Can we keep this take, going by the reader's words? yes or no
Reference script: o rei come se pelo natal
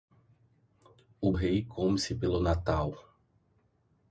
yes